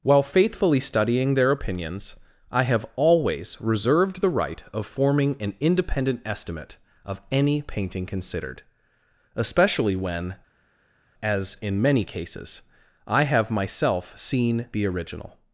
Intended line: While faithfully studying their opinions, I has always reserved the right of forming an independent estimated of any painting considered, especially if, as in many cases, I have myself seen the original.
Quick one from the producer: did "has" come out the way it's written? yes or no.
no